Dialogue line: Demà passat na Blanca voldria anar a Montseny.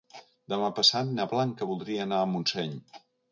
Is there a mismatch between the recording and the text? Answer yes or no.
no